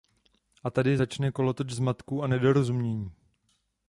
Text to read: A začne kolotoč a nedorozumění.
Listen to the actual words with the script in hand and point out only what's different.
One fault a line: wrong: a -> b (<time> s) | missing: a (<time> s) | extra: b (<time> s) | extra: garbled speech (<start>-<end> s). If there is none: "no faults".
extra: tady (0.7 s)
extra: zmatků (1.7 s)